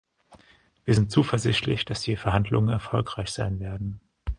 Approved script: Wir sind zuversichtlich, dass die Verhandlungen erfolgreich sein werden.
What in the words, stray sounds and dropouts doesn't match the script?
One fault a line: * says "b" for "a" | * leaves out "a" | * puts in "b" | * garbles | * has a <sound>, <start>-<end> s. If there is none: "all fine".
all fine